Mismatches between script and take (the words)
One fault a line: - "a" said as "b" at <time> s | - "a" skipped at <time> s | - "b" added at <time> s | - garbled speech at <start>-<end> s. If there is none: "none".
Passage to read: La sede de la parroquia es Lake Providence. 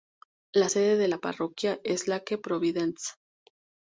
none